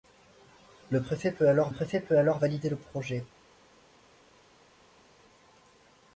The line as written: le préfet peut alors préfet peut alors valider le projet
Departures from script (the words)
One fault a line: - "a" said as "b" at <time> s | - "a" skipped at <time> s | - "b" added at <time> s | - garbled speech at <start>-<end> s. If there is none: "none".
none